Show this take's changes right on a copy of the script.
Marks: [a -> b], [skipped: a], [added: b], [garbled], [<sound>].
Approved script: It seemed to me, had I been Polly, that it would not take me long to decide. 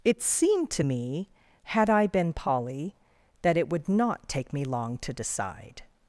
It seemed to me, had I been Polly, that it would not take me long to decide.